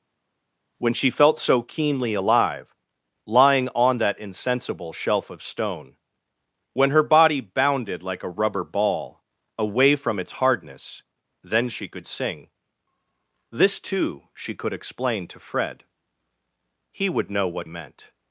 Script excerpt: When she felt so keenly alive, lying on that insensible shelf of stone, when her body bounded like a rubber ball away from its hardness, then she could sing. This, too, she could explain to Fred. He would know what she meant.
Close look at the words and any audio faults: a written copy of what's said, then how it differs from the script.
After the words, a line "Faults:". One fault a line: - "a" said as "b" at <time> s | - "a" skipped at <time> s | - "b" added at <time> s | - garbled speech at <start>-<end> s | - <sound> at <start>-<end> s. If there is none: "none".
When she felt so keenly alive, lying on that insensible shelf of stone, when her body bounded like a rubber ball away from its hardness, then she could sing. This, too, she could explain to Fred. He would know what meant.
Faults:
- "she" skipped at 17.7 s